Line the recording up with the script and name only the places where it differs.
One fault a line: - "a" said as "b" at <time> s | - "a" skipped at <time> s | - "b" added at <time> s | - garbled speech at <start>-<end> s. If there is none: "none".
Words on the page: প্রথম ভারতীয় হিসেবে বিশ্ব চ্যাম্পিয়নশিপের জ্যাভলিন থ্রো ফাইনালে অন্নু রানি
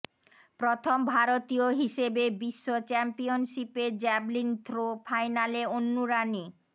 none